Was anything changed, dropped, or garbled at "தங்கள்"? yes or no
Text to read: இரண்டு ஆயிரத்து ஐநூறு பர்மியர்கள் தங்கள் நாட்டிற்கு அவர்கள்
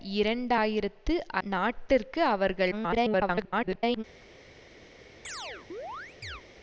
yes